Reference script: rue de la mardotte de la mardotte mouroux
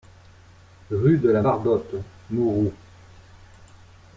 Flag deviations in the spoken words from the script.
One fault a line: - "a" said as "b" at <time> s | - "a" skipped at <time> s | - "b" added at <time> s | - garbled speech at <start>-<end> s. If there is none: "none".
- "de la mardotte" skipped at 1.9 s